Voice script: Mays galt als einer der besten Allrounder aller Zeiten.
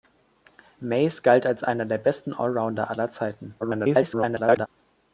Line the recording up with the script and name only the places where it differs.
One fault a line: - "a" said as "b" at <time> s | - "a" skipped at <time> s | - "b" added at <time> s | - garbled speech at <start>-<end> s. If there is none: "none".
- garbled speech at 3.6-4.7 s